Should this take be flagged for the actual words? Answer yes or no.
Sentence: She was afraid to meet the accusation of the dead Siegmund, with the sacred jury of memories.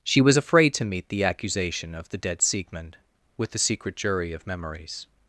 yes